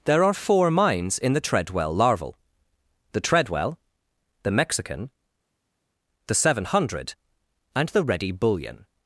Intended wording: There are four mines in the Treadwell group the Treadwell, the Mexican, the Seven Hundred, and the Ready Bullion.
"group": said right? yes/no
no